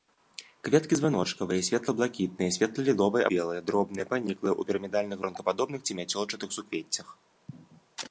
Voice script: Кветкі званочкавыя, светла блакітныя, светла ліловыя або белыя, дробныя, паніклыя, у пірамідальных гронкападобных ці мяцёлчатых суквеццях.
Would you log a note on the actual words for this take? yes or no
yes